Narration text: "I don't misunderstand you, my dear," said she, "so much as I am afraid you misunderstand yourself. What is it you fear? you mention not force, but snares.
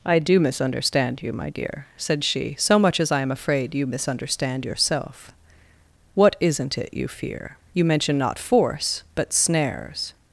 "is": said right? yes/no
no